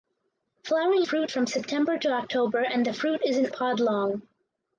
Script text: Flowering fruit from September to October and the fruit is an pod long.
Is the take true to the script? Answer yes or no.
yes